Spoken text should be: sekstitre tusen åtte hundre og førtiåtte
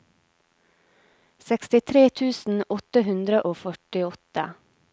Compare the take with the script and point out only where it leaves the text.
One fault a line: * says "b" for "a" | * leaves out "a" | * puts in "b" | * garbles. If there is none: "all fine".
all fine